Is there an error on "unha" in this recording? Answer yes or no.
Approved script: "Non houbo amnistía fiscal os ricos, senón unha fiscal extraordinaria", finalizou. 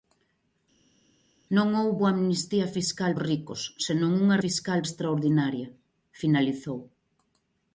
no